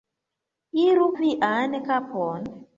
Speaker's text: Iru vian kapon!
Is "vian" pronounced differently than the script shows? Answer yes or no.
no